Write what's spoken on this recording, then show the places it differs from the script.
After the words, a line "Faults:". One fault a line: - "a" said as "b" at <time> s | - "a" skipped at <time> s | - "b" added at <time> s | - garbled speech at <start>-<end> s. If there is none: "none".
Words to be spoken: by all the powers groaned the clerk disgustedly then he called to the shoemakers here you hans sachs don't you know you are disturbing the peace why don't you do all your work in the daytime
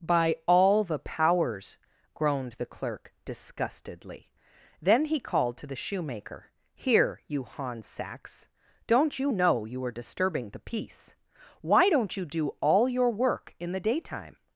by all the powers groaned the clerk disgustedly then he called to the shoemaker here you hans sachs don't you know you are disturbing the peace why don't you do all your work in the daytime
Faults:
- "shoemakers" said as "shoemaker" at 5.8 s